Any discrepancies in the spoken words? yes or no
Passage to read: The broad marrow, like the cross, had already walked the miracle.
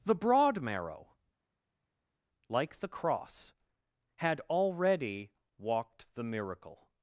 no